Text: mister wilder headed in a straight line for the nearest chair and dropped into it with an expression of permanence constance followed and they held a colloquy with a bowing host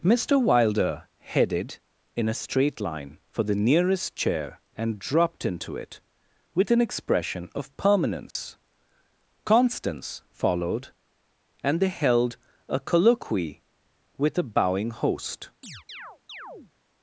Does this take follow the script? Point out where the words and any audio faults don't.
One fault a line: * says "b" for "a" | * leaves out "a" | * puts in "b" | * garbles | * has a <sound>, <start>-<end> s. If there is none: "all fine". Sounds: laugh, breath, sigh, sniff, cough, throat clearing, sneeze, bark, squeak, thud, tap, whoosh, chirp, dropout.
* has a dropout, 8.3-8.4 s
* has a chirp, 15.6-16.7 s